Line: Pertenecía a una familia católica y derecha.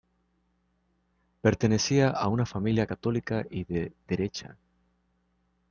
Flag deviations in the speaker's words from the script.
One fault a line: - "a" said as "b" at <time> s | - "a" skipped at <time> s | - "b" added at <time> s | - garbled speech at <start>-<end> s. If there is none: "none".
- "de" added at 3.6 s